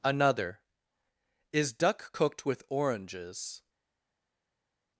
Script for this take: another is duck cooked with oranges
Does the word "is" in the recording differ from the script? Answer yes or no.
no